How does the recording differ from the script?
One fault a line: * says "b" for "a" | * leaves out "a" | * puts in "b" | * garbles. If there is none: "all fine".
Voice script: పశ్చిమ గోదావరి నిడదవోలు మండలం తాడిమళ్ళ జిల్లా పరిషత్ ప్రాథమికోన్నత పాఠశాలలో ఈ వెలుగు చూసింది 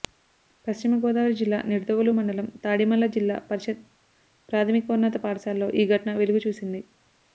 * puts in "జిల్లా"
* puts in "ఘటన"